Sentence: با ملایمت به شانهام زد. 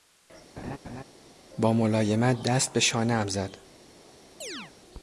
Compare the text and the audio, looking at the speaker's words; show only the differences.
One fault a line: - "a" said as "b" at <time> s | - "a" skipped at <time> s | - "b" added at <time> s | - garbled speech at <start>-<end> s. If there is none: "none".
- "دست" added at 2.4 s